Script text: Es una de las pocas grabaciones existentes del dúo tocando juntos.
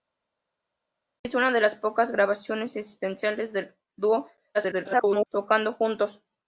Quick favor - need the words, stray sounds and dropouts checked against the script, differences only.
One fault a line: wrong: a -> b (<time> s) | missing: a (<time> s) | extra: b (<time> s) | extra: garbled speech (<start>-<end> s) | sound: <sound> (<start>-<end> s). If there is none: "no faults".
extra: garbled speech (4.5-5.3 s)